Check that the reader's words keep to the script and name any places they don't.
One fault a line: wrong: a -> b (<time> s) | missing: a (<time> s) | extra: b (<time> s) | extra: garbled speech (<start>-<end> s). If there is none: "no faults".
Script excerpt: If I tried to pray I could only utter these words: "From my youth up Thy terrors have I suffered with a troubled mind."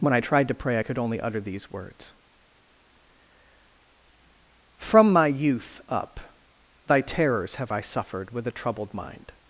wrong: If -> When (0.0 s)